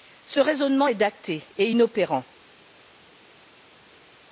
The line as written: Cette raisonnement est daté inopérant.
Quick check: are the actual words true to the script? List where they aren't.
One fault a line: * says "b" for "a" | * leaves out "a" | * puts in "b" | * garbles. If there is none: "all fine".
* says "Ce" for "Cette"
* puts in "et"